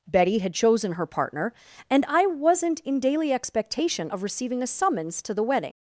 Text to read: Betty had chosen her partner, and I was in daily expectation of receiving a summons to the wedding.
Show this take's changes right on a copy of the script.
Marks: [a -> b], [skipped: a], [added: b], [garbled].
Betty had chosen her partner, and I [was -> wasn't] in daily expectation of receiving a summons to the wedding.